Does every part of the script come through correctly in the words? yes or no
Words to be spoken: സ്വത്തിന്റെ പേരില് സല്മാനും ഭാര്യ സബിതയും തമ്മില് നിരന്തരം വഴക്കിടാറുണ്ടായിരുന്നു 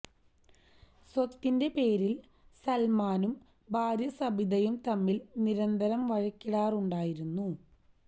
yes